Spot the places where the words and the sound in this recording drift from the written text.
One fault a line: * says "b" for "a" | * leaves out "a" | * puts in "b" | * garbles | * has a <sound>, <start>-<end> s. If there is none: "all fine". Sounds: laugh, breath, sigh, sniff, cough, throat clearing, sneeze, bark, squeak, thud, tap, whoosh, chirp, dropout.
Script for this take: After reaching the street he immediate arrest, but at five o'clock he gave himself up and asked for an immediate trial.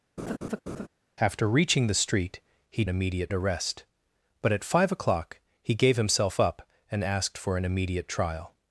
* has a laugh, 0.2-0.9 s